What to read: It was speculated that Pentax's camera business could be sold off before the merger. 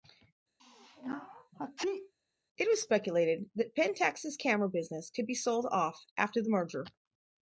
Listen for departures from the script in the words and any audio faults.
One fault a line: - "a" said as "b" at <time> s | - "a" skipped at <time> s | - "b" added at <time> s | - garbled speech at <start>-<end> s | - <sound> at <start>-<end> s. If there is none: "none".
- sneeze at 0.6-2.1 s
- "before" said as "after" at 6.2 s